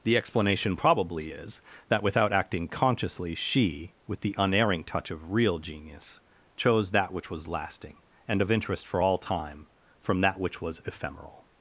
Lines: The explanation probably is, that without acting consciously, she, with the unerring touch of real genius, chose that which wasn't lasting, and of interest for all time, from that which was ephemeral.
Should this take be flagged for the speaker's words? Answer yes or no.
yes